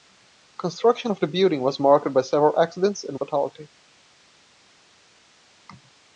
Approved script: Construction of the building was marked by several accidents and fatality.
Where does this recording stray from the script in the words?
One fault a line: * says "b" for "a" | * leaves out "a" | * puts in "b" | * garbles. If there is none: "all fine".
all fine